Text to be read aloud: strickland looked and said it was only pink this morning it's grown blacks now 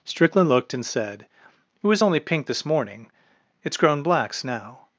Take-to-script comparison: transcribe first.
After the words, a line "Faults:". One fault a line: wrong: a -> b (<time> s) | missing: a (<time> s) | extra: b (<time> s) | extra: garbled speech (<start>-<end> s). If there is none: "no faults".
strickland looked and said it was only pink this morning it's grown blacks now
Faults:
no faults